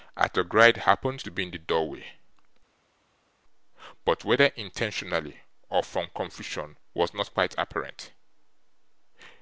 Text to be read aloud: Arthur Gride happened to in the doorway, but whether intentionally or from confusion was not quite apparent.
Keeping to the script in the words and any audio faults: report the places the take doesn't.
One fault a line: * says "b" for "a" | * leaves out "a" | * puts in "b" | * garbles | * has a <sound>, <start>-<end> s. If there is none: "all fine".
* puts in "be"